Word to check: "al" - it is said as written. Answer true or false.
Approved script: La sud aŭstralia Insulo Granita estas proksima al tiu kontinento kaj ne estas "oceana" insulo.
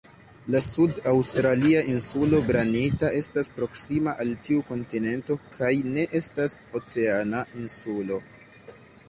true